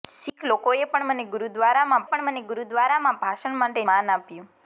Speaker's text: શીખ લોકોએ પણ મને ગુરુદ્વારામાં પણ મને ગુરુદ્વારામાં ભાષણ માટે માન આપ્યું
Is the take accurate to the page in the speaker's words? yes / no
yes